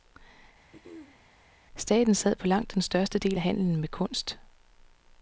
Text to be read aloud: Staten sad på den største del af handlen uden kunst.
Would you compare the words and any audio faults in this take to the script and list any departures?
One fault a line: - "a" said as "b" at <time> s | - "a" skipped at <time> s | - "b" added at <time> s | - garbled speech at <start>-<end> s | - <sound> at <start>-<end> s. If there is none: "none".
- throat clearing at 0.7-1.2 s
- "langt" added at 2.5 s
- "uden" said as "med" at 3.8 s